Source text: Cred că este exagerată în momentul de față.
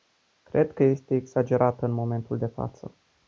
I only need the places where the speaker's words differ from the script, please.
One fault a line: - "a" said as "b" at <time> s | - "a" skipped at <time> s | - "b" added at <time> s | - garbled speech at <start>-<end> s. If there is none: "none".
none